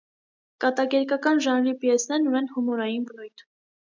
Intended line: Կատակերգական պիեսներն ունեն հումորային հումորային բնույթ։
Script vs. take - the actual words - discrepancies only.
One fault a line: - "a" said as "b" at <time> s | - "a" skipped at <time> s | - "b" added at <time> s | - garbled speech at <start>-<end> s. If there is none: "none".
- "ժանրի" added at 1.5 s
- "հումորային" skipped at 3.0 s